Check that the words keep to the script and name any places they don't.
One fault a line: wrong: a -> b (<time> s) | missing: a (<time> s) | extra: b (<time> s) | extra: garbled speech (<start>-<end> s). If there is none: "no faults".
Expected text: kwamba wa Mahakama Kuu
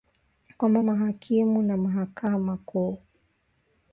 extra: mahakimu (0.8 s)